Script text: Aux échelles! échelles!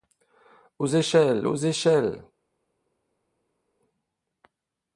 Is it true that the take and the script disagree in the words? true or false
true